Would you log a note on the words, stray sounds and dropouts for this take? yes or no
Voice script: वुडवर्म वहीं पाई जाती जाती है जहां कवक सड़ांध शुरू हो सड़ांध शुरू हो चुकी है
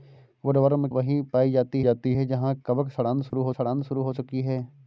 yes